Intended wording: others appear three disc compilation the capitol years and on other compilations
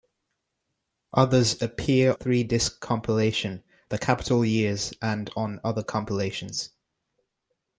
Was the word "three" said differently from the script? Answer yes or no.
no